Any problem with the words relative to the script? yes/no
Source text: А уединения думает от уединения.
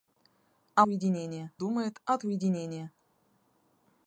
no